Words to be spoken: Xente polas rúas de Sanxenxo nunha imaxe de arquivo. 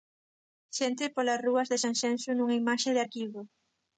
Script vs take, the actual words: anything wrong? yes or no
no